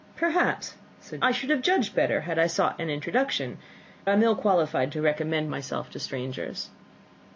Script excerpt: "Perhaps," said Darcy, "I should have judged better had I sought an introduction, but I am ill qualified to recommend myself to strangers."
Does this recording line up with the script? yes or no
no